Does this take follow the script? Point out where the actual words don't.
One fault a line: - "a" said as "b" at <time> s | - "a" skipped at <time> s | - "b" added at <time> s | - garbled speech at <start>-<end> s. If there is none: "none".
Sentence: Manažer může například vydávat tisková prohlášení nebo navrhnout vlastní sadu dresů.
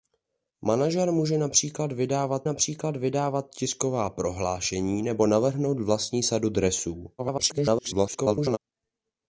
- "například vydávat" added at 2.4 s
- garbled speech at 7.2-8.6 s